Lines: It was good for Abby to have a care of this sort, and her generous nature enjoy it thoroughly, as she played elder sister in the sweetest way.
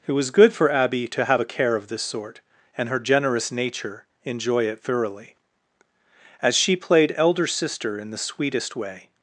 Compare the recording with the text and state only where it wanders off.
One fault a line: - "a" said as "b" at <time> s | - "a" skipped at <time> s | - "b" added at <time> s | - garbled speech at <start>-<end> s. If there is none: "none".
none